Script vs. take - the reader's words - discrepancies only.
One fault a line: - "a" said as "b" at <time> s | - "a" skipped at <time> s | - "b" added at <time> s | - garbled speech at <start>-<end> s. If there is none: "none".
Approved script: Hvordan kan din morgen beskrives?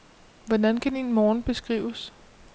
none